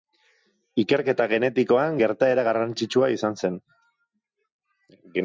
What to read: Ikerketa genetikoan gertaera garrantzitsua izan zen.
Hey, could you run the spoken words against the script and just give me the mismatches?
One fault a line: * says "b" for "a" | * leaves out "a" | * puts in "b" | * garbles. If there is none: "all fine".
all fine